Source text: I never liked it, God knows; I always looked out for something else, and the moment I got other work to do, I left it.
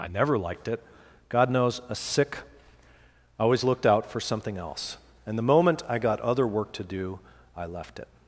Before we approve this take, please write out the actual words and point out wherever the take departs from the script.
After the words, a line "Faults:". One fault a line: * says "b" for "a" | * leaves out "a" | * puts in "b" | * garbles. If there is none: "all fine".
I never liked it, God knows; a sick I always looked out for something else, and the moment I got other work to do, I left it.
Faults:
* puts in "a sick"